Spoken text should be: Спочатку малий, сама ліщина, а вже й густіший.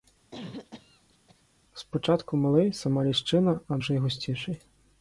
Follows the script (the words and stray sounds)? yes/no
no